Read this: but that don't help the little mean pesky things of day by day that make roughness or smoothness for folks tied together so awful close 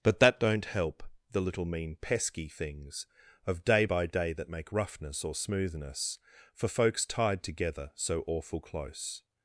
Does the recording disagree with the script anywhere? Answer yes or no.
no